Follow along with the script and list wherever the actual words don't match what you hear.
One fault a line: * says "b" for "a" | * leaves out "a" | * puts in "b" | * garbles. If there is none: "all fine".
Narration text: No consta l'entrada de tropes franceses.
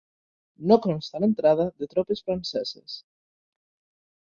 all fine